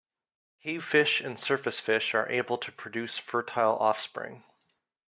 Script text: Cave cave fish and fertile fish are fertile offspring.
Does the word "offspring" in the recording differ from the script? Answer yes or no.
no